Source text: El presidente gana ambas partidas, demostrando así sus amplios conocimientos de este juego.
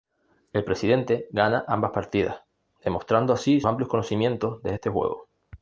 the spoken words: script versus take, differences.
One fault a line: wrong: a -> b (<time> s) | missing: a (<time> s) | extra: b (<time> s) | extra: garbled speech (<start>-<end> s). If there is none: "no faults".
missing: sus (3.6 s)